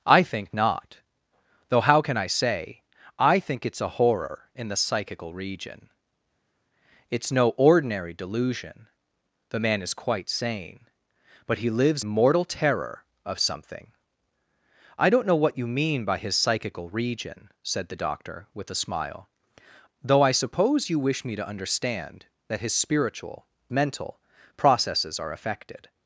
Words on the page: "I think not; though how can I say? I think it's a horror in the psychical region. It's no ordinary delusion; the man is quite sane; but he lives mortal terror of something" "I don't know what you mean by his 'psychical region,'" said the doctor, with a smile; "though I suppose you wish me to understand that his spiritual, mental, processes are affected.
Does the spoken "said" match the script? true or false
true